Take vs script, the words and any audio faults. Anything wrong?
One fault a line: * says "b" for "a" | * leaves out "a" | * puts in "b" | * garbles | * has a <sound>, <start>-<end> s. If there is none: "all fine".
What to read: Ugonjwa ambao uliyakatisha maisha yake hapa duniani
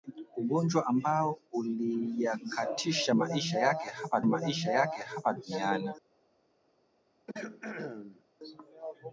* puts in "maisha yake hapa"
* has a throat clearing, 7.3-8.2 s